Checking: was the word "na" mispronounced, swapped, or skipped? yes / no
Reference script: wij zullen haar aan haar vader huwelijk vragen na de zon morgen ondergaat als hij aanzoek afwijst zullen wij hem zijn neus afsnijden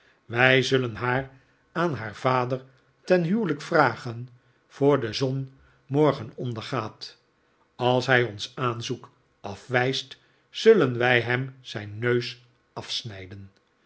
yes